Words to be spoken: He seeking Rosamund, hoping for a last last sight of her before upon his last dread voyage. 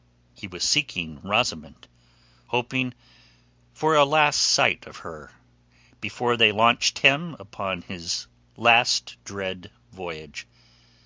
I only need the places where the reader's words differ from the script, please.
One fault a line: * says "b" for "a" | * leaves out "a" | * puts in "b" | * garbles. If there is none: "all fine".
* puts in "was"
* leaves out "last"
* puts in "they launched him"